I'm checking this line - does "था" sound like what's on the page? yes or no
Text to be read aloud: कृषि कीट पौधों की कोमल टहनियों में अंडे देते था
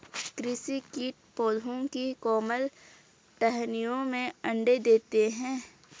no